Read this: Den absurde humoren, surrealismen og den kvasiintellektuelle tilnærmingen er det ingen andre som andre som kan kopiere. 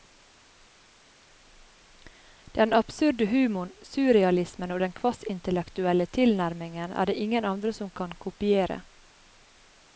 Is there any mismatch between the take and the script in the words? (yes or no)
yes